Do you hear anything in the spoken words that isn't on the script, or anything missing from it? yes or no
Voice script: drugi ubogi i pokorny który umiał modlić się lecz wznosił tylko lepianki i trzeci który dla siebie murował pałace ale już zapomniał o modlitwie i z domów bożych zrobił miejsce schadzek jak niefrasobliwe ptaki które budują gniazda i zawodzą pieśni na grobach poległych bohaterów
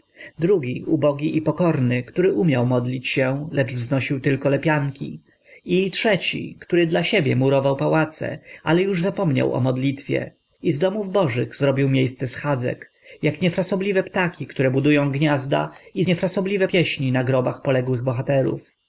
yes